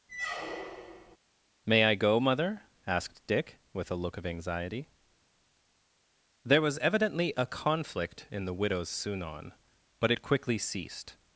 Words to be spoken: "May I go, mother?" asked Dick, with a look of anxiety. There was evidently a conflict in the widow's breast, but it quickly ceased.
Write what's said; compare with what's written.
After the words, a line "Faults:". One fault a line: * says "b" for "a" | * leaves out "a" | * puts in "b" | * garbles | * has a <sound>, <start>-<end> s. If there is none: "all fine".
"May I go, mother?" asked Dick, with a look of anxiety. There was evidently a conflict in the widow's sunon, but it quickly ceased.
Faults:
* has a squeak, 0.1-1.2 s
* says "sunon" for "breast"